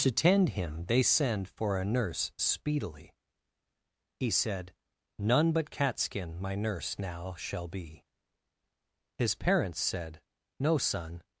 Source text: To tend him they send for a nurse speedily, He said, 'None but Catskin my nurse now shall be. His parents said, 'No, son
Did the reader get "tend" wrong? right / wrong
right